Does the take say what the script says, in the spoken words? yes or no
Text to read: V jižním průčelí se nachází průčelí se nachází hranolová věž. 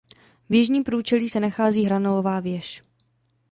no